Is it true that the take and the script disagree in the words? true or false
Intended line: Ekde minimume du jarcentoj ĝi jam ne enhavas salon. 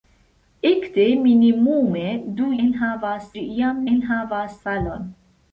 true